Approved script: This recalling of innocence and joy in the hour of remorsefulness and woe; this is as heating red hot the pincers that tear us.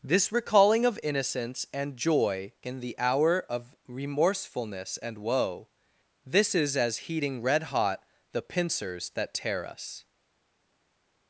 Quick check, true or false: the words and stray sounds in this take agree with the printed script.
true